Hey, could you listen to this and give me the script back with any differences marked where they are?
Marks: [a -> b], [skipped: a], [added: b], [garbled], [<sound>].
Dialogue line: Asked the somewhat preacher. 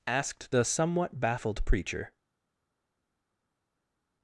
Asked the somewhat [added: baffled] preacher.